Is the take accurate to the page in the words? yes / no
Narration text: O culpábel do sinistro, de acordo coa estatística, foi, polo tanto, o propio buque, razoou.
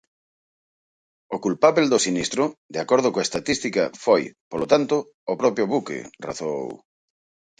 yes